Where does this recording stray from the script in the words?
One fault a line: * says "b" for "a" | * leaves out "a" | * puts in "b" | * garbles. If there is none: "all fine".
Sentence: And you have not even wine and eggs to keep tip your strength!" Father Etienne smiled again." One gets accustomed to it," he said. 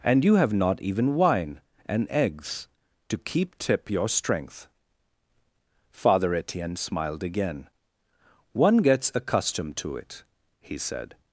all fine